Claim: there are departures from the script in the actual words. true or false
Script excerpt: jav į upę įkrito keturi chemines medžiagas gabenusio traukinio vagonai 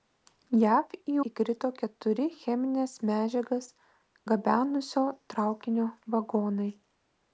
true